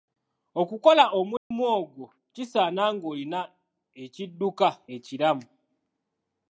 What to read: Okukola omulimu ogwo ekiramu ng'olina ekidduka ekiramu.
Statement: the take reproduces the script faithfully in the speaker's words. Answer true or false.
false